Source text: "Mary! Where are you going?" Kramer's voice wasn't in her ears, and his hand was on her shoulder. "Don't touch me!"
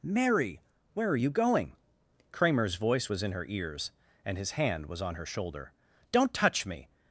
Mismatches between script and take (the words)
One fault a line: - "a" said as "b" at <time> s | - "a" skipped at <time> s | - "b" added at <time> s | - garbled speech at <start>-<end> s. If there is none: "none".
- "wasn't" said as "was" at 3.1 s